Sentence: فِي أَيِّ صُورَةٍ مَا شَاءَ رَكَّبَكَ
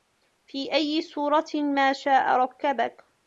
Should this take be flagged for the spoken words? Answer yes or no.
no